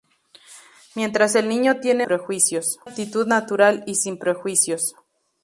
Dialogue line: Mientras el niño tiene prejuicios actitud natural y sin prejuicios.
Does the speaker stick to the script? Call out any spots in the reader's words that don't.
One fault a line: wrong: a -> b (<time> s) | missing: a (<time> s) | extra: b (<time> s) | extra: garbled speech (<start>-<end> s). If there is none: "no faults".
no faults